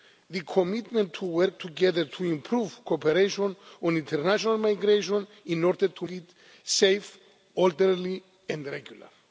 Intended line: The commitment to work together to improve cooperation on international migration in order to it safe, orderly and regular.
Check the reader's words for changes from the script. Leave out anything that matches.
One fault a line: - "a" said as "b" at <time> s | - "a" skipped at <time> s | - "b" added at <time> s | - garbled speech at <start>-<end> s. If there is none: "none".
none